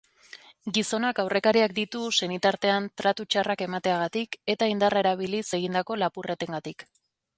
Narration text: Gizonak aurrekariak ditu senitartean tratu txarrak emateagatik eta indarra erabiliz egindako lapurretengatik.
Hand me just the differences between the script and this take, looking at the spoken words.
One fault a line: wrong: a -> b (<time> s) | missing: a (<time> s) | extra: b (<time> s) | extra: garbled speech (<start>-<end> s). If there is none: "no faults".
no faults